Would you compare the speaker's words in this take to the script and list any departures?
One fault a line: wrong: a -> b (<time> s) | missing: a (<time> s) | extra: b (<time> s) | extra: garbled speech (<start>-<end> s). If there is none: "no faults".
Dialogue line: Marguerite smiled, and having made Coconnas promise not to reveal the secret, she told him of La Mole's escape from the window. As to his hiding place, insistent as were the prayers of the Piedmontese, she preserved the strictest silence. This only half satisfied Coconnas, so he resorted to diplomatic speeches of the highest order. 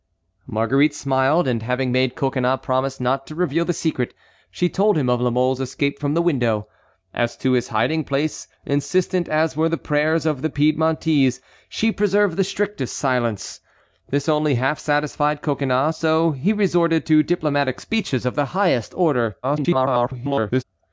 extra: garbled speech (19.4-20.6 s)